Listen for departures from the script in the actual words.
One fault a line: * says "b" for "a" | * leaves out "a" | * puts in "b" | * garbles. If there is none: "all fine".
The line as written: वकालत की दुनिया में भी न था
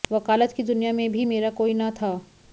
* puts in "मेरा कोई"